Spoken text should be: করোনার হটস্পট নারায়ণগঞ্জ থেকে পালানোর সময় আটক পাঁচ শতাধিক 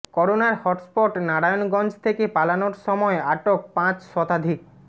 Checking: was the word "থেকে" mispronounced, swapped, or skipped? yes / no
no